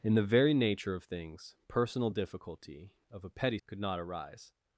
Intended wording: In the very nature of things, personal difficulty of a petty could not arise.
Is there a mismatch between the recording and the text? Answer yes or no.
no